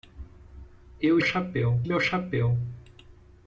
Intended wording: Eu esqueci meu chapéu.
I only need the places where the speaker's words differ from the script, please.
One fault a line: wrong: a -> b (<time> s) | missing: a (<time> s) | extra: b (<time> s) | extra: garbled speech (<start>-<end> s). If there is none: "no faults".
wrong: esqueci -> chapéu (1.2 s)